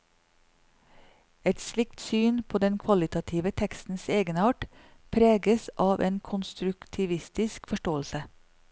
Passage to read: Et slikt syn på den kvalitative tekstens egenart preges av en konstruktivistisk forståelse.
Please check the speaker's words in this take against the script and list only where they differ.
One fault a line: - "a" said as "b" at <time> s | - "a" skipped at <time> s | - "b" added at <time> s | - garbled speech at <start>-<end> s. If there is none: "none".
none